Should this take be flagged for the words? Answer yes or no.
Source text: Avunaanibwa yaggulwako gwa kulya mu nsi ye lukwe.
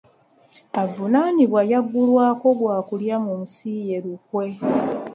no